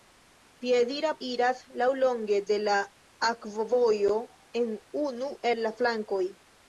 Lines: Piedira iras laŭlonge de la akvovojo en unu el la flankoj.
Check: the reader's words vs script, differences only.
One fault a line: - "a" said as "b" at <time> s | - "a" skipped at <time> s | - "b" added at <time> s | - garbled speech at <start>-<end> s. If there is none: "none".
none